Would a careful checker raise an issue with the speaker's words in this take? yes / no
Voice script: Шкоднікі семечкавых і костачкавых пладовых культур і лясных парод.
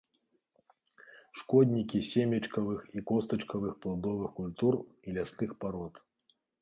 no